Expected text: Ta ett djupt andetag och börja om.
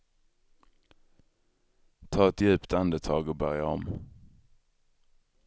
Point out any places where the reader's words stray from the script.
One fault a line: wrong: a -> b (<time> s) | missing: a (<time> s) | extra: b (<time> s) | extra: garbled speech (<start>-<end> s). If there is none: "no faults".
no faults